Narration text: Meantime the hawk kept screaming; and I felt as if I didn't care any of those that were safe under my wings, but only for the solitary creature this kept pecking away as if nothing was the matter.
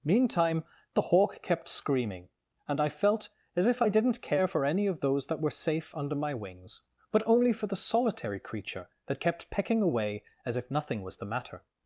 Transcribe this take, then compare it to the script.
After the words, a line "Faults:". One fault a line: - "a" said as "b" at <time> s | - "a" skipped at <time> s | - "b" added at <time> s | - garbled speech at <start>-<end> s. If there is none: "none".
Meantime the hawk kept screaming; and I felt as if I didn't care for any of those that were safe under my wings, but only for the solitary creature that kept pecking away as if nothing was the matter.
Faults:
- "for" added at 4.4 s
- "this" said as "that" at 9.1 s